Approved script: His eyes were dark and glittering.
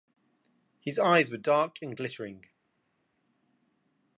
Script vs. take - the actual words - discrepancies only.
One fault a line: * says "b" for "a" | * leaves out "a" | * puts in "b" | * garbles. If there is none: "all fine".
all fine